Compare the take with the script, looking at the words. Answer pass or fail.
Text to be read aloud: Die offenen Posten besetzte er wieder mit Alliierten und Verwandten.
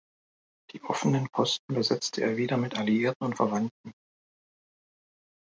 pass